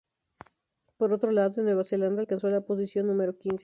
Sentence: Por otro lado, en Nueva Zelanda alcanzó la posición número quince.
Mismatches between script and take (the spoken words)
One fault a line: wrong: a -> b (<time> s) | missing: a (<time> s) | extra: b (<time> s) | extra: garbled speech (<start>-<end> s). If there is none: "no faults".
no faults